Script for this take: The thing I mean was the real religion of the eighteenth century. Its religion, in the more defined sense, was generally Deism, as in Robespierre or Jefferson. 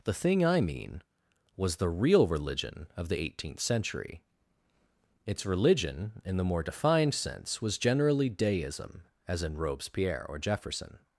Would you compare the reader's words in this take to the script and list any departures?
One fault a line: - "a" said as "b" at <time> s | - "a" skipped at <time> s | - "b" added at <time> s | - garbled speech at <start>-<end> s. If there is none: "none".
none